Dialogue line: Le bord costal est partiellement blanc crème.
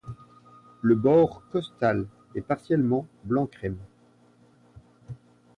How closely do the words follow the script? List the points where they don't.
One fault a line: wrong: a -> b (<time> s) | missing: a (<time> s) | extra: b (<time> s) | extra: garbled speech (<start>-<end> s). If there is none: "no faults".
no faults